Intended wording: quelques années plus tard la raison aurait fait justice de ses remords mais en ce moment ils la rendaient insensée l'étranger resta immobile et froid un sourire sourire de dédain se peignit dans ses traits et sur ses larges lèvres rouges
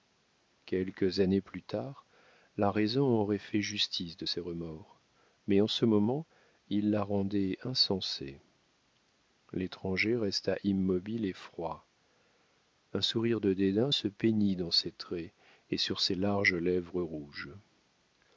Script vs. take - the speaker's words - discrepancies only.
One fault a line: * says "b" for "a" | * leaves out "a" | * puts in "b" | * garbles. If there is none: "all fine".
* leaves out "sourire"